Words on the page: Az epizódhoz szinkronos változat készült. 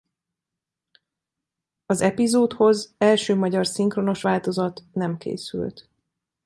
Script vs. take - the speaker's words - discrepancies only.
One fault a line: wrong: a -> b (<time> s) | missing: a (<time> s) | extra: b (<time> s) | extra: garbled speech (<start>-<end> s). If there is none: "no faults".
extra: első magyar (3.0 s)
extra: nem (4.9 s)